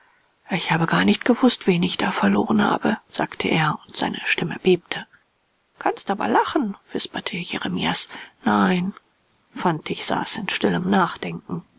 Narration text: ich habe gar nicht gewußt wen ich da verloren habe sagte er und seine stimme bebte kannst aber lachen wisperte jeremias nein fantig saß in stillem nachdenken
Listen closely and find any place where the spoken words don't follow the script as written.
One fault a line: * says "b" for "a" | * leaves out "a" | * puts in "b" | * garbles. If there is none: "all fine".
all fine